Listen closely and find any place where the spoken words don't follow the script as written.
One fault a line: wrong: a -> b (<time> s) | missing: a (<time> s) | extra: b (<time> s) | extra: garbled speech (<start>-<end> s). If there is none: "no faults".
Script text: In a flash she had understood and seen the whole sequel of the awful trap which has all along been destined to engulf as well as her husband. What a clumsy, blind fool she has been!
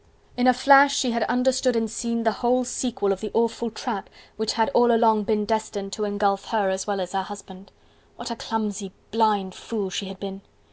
wrong: has -> had (4.5 s)
extra: her (6.5 s)
wrong: has -> had (10.1 s)